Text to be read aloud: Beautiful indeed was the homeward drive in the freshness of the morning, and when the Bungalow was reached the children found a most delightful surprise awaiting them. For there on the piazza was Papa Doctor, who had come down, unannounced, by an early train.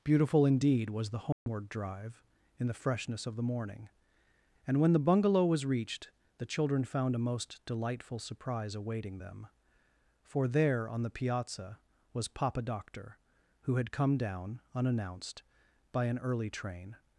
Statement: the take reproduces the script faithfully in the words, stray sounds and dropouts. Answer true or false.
false